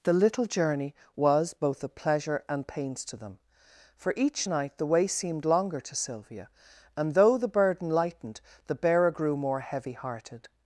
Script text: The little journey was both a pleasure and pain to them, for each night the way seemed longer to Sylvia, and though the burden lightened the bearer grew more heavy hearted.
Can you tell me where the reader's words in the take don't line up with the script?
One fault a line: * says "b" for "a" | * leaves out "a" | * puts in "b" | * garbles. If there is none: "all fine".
* says "pains" for "pain"